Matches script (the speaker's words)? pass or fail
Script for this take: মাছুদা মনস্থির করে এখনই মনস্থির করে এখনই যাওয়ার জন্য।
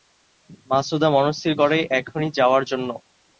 fail